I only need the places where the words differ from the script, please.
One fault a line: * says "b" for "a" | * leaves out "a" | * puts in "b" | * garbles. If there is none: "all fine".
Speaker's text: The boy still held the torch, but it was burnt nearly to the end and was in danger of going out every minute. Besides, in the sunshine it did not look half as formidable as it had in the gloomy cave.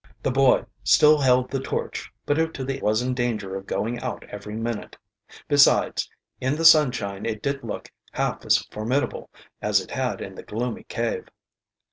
* leaves out "was burnt nearly"
* leaves out "end and"
* leaves out "not"